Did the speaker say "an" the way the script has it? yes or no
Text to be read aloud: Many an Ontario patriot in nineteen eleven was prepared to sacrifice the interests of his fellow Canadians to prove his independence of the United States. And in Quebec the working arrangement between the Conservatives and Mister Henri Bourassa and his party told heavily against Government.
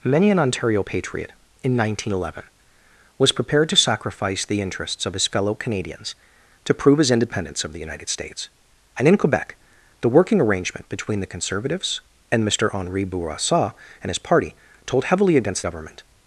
yes